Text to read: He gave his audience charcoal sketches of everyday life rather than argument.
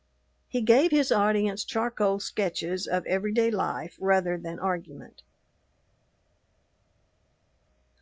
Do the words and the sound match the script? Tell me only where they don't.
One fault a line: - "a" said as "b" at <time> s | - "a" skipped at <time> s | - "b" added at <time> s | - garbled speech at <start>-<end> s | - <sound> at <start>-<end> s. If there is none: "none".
none